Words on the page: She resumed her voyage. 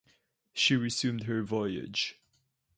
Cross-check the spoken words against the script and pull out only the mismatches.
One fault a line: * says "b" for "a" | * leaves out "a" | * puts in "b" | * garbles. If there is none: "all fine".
all fine